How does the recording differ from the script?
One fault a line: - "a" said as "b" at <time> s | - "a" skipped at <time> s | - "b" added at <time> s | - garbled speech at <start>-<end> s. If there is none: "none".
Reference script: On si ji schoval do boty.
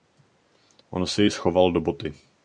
none